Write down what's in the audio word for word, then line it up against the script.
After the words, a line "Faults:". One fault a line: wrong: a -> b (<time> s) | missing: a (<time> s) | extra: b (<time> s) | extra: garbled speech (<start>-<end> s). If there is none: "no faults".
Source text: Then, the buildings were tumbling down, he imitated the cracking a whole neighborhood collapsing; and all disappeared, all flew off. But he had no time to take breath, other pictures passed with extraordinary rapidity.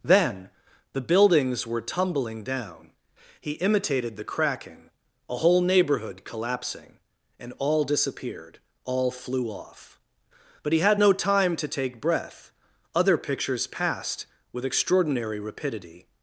Then, the buildings were tumbling down, he imitated the cracking a whole neighborhood collapsing; and all disappeared, all flew off. But he had no time to take breath, other pictures passed with extraordinary rapidity.
Faults:
no faults